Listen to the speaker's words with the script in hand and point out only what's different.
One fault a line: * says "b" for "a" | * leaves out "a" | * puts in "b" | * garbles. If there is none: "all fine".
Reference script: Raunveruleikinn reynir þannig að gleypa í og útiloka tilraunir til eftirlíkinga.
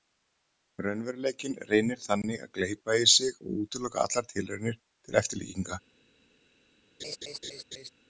* puts in "sig"
* puts in "allar"